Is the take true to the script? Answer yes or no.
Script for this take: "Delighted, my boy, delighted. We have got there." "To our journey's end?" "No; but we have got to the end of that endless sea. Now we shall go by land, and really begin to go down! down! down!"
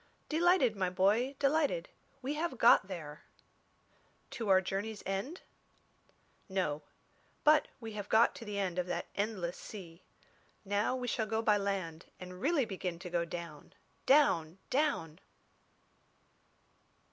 yes